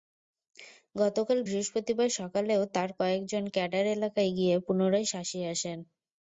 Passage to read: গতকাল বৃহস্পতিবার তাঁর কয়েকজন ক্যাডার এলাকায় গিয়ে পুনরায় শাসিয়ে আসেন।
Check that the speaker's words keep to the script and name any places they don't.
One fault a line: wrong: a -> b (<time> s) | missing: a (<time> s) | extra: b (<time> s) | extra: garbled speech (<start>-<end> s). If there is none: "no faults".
extra: সকালেও (2.2 s)